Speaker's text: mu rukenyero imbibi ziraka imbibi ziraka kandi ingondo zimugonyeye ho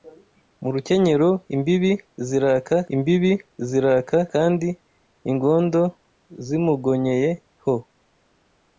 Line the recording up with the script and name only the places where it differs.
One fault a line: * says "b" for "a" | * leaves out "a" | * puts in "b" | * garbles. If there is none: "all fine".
all fine